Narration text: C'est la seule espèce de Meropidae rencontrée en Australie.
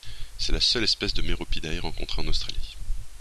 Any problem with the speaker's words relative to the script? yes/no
no